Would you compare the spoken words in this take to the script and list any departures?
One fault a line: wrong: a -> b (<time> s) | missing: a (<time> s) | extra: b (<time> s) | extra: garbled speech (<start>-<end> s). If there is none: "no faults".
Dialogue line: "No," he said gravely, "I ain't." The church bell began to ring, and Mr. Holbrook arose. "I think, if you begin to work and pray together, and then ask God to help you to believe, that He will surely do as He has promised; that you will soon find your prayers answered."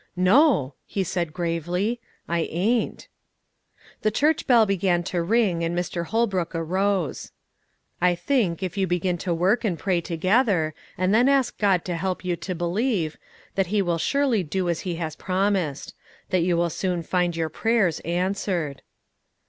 no faults